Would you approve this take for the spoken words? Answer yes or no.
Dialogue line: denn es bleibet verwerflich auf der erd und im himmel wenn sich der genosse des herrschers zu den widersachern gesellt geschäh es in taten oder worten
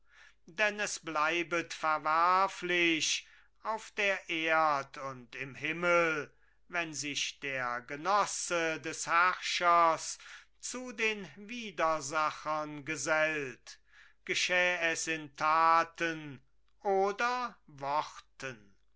yes